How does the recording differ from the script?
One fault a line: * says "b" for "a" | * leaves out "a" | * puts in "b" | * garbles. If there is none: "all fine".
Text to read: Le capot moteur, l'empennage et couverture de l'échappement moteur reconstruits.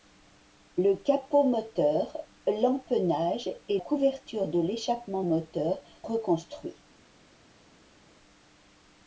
all fine